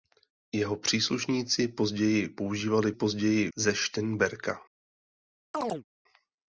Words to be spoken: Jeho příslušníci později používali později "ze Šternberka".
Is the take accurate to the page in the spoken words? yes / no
yes